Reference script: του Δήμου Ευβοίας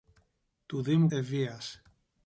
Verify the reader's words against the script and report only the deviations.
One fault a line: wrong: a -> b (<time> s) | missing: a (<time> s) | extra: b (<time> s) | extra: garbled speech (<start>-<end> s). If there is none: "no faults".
no faults